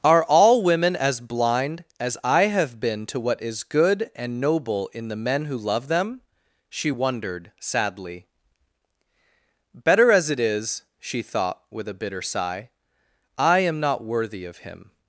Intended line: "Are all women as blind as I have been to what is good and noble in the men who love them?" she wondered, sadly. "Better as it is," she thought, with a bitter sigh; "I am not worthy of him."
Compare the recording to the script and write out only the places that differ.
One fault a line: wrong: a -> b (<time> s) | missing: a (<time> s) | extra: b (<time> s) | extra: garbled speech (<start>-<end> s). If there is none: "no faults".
no faults